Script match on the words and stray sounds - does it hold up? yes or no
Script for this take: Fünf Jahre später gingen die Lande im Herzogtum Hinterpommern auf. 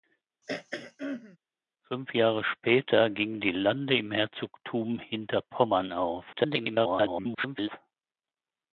no